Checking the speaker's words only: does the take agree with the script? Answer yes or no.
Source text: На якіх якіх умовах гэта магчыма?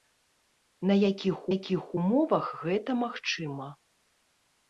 yes